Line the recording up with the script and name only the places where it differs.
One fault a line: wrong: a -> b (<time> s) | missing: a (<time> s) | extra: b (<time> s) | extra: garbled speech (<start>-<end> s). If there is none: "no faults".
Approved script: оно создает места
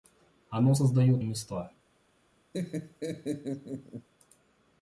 no faults